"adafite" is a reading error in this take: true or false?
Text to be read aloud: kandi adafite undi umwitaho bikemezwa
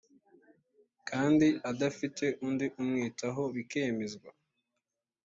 false